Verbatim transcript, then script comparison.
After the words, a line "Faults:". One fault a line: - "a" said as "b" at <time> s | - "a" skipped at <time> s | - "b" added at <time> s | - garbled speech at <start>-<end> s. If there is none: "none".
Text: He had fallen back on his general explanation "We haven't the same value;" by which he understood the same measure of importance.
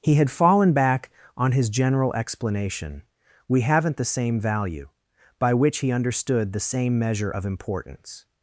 He had fallen back on his general explanation "We haven't the same value;" by which he understood the same measure of importance.
Faults:
none